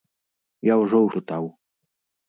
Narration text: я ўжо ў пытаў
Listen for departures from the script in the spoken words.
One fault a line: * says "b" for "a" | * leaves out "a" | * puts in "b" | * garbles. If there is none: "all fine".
all fine